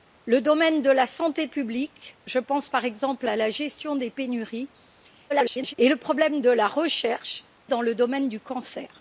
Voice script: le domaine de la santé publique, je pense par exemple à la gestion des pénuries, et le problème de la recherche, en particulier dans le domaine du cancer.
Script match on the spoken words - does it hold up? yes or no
no